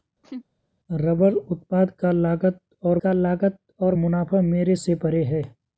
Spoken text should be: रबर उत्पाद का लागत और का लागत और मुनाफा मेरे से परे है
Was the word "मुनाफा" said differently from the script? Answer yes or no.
no